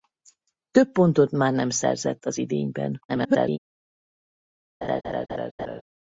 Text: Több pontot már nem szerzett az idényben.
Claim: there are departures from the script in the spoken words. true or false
true